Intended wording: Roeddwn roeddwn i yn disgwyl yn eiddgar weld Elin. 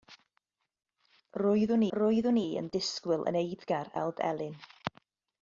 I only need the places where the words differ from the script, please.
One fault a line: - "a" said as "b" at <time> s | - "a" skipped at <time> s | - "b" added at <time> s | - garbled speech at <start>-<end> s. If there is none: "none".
none